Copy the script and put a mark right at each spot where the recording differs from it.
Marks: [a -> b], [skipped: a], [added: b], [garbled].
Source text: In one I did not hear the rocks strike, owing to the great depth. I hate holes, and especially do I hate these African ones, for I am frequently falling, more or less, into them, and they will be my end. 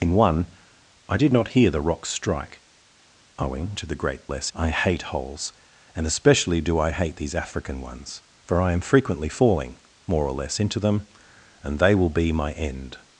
In one I did not hear the rocks strike, owing to the great [depth. -> less] I hate holes, and especially do I hate these African ones, for I am frequently falling, more or less, into them, and they will be my end.